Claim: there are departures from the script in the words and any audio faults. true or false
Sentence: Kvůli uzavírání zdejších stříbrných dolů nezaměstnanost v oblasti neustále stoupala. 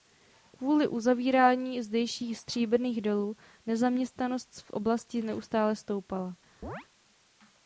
true